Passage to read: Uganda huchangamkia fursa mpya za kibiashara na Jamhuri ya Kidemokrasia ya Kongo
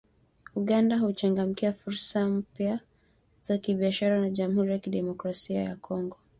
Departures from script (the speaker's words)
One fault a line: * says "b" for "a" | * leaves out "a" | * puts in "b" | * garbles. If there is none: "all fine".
all fine